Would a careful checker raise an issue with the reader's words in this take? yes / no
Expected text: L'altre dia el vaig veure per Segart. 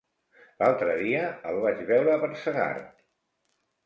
no